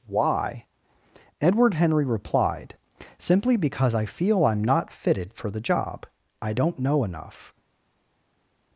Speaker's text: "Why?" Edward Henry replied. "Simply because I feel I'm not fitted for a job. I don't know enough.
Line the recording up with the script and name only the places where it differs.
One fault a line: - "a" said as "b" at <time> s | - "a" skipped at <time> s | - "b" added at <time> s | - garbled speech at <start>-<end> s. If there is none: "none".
- "a" said as "the" at 5.5 s